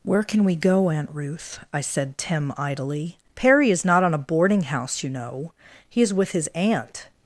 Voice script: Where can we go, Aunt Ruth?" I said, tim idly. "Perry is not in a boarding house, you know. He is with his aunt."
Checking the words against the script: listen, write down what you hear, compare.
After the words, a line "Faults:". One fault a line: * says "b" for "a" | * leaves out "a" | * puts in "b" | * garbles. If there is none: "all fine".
Where can we go, Aunt Ruth?" I said, tim idly. "Perry is not on a boarding house, you know. He is with his aunt."
Faults:
* says "on" for "in"